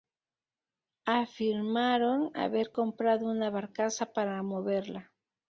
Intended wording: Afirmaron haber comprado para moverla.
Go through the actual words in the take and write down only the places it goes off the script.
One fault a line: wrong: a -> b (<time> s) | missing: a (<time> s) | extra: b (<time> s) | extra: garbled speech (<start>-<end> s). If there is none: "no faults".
extra: una barcaza (3.3 s)